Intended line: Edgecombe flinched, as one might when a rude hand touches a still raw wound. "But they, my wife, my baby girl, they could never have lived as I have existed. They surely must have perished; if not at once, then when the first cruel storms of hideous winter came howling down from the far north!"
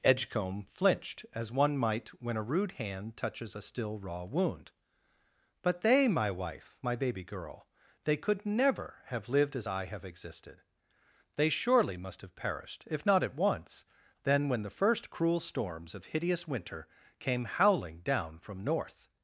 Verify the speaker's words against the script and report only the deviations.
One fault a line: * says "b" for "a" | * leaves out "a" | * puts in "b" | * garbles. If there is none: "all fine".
* leaves out "the far"